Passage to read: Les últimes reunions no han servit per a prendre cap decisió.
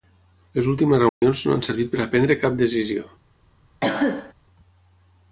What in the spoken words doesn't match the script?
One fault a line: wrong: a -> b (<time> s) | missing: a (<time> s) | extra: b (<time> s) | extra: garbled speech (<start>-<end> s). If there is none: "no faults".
no faults